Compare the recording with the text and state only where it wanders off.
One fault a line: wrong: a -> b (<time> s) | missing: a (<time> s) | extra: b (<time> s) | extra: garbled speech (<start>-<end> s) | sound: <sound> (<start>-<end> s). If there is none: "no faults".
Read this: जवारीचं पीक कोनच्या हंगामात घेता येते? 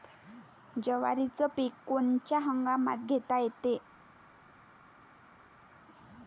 no faults